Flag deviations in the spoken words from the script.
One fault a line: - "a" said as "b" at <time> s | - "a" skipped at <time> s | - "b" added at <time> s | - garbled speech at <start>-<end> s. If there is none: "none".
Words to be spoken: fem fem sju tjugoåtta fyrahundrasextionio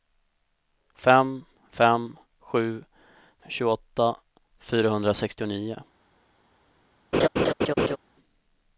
none